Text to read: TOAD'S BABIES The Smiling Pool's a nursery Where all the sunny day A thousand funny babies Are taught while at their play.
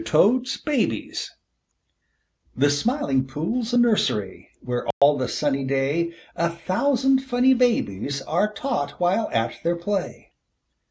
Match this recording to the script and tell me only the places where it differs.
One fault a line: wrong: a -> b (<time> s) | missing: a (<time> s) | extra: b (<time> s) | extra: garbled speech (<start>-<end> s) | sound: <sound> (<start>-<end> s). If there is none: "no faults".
sound: dropout (4.9-5.0 s)